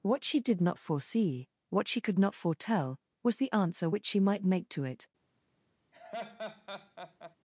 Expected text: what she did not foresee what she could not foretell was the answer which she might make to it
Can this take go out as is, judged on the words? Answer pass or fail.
pass